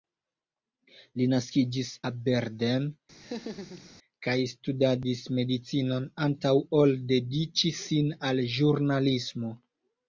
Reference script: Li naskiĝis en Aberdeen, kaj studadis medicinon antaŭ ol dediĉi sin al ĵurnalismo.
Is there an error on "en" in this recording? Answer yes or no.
yes